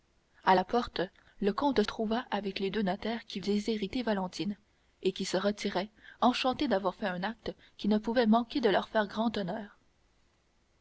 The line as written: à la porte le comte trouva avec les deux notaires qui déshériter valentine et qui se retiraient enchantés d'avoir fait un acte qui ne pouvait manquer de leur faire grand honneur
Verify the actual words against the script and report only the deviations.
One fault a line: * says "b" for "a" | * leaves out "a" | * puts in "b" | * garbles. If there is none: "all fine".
all fine